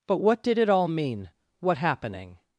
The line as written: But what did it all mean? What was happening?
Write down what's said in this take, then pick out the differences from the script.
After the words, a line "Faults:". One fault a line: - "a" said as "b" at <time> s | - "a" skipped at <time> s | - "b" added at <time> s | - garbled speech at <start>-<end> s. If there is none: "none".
But what did it all mean? What happening?
Faults:
- "was" skipped at 1.8 s